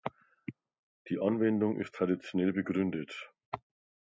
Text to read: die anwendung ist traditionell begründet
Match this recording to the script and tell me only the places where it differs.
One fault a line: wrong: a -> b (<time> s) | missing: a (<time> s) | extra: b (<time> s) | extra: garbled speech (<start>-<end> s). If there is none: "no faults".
no faults